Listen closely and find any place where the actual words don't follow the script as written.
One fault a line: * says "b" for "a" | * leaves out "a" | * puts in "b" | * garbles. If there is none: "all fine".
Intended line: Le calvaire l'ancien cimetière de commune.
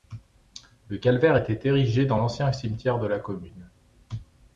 * puts in "était érigé dans"
* puts in "la"